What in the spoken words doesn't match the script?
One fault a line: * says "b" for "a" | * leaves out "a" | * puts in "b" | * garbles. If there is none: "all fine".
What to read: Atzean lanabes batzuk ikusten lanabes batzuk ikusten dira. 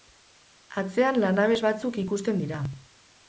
* leaves out "lanabes batzuk ikusten"